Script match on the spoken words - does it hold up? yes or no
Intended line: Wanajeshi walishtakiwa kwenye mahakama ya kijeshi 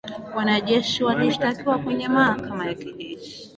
yes